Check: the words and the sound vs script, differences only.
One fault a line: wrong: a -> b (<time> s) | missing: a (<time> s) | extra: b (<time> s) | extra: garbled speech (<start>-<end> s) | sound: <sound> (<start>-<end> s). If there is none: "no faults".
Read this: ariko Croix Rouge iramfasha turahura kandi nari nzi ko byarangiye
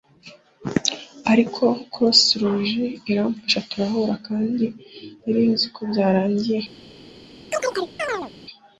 sound: chirp (7.5-8.3 s)